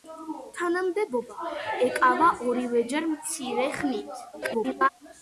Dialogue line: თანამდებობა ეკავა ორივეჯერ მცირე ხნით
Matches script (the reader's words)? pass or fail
fail